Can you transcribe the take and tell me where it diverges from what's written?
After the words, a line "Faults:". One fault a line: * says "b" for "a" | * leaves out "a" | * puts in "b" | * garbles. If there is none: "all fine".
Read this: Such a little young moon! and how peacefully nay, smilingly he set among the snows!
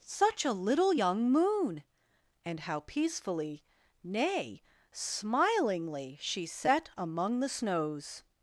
Such a little young moon! and how peacefully nay, smilingly she set among the snows!
Faults:
* says "she" for "he"